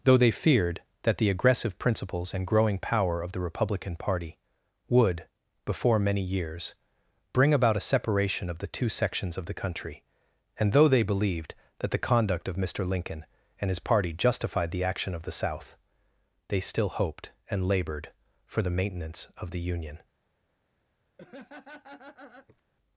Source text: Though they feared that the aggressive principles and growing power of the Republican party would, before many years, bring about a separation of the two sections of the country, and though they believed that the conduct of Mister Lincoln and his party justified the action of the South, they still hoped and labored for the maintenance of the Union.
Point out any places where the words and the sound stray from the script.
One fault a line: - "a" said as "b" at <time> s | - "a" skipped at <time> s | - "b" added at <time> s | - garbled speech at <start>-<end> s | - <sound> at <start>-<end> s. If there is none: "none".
- laugh at 21.2-22.6 s